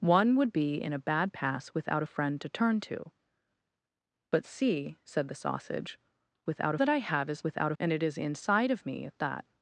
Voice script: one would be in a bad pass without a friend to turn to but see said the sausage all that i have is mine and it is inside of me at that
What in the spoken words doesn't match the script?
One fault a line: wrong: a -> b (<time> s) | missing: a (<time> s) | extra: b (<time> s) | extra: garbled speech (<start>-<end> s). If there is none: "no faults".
wrong: all -> without (6.5 s)
wrong: mine -> without (7.4 s)